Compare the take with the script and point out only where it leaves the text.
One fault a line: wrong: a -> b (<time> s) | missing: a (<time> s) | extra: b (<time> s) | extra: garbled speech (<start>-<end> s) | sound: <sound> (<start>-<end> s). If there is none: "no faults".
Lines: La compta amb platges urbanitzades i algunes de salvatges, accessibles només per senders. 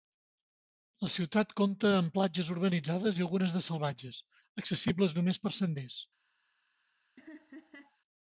extra: ciutat (1.1 s)
sound: laugh (7.2-8.0 s)